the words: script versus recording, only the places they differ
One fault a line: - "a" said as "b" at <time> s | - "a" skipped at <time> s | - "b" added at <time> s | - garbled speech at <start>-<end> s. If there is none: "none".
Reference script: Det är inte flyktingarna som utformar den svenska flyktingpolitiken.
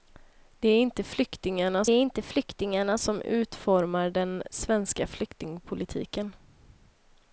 - "är inte flyktingarna" added at 1.9 s